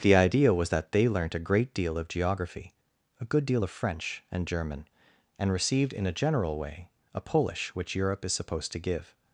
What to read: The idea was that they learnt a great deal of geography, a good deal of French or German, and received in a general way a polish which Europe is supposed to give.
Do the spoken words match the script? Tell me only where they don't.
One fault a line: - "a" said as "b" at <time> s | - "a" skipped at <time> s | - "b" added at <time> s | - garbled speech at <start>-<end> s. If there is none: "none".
- "or" said as "and" at 4.3 s